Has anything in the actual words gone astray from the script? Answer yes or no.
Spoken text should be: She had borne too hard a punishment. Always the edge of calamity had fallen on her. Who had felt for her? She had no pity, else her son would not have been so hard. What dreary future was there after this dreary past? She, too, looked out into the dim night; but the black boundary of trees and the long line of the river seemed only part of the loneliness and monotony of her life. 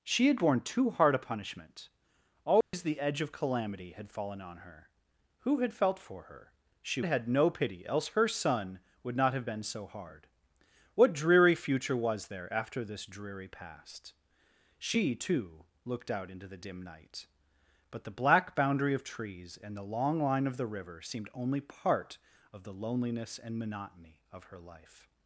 no